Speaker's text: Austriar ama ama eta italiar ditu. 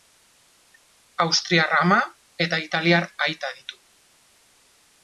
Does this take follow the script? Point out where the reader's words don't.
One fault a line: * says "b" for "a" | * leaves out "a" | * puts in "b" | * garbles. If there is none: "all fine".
* leaves out "ama"
* puts in "aita"